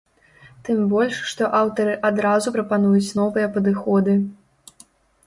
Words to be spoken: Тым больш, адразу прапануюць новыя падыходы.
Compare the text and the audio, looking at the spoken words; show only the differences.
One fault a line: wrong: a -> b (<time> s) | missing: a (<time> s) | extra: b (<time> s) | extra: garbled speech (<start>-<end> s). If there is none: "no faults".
extra: што аўтары (1.3 s)